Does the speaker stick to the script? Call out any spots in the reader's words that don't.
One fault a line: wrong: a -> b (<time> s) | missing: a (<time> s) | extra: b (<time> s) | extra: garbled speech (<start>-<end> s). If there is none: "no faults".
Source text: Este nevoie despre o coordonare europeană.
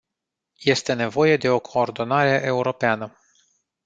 wrong: despre -> de (1.4 s)